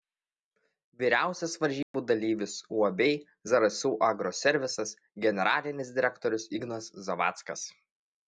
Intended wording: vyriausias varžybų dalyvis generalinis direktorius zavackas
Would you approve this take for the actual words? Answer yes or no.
no